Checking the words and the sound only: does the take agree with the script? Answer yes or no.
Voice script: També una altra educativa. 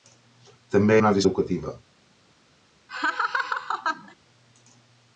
no